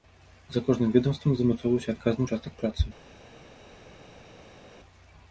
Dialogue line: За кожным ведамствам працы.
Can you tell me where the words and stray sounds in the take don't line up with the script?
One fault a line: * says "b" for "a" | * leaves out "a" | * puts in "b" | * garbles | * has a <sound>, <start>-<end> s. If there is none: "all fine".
* puts in "замацоўваўся адказны ўчастак"